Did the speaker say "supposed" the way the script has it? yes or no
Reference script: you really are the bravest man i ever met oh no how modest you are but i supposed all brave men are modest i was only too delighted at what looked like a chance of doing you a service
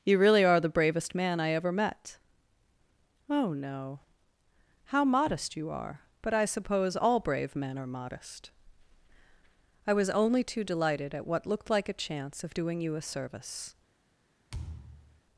no